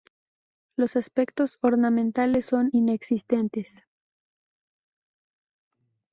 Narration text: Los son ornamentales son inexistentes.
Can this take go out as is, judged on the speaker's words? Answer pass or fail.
fail